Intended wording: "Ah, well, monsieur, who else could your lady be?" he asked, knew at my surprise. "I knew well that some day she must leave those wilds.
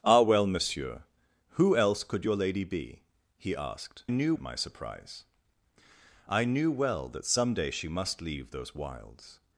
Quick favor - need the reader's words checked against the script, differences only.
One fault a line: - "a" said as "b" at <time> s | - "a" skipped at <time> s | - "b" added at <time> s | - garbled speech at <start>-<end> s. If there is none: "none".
none